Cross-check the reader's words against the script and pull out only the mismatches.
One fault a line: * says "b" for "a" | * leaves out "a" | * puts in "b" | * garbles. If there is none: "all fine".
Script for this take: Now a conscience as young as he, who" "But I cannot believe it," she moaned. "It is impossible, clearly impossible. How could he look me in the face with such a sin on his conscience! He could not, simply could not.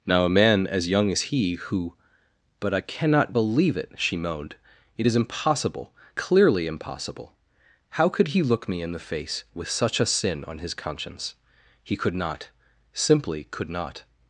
* says "man" for "conscience"